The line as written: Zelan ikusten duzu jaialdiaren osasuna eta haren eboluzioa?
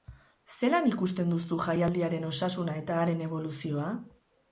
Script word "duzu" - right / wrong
right